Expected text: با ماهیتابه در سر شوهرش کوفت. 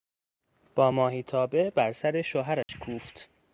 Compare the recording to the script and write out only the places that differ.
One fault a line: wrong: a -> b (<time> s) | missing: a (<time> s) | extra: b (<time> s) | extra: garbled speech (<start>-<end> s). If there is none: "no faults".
wrong: در -> بر (1.7 s)